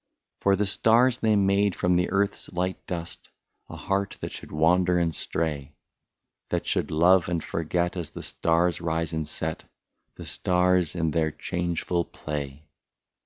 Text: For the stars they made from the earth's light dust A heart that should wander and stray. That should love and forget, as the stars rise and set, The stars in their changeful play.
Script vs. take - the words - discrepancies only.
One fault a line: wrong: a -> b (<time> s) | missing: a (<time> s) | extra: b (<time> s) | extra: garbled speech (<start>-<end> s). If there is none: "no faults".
no faults